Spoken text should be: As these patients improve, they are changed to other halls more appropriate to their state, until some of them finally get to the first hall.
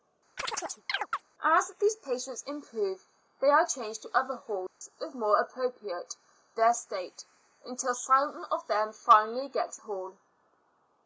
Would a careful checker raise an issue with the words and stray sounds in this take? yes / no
yes